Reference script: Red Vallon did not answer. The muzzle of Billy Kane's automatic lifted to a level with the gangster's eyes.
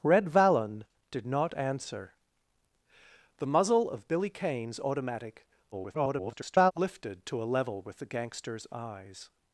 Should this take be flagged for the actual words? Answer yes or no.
yes